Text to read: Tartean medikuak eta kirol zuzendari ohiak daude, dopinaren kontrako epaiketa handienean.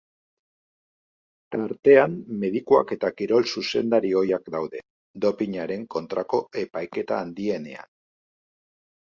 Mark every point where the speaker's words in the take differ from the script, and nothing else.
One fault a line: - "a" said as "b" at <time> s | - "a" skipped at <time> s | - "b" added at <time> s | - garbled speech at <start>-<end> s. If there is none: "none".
none